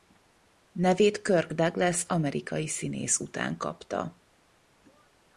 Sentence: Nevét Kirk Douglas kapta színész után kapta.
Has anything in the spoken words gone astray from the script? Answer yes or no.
yes